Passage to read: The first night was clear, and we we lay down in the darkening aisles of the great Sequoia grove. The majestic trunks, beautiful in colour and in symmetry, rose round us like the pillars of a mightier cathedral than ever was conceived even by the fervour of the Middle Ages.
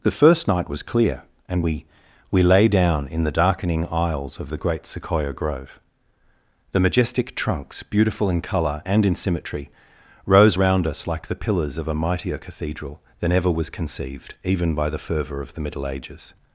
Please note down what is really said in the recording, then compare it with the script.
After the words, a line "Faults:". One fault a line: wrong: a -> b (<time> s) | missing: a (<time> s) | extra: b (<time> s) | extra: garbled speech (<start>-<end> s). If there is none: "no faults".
The first night was clear, and we we lay down in the darkening aisles of the great Sequoia grove. The majestic trunks, beautiful in colour and in symmetry, rose round us like the pillars of a mightier cathedral than ever was conceived even by the fervour of the Middle Ages.
Faults:
no faults